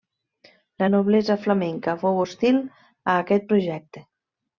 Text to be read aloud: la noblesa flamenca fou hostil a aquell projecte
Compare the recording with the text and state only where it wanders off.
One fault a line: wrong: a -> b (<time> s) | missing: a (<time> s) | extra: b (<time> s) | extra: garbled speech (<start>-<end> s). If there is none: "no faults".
wrong: aquell -> aquest (3.2 s)